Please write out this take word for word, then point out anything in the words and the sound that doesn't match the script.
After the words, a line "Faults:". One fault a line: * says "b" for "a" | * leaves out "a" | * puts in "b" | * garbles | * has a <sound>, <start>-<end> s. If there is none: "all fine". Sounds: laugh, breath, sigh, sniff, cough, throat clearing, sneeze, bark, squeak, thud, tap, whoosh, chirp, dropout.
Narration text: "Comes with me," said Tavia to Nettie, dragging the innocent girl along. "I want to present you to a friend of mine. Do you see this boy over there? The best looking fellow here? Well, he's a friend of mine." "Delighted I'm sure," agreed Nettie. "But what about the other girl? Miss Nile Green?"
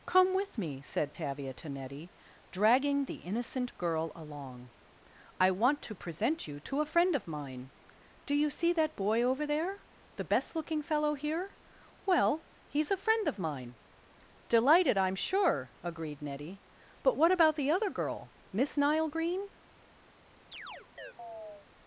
"Come with me," said Tavia to Nettie, dragging the innocent girl along. "I want to present you to a friend of mine. Do you see that boy over there? The best looking fellow here? Well, he's a friend of mine." "Delighted I'm sure," agreed Nettie. "But what about the other girl? Miss Nile Green?"
Faults:
* says "Come" for "Comes"
* says "that" for "this"
* has a chirp, 20.5-21.7 s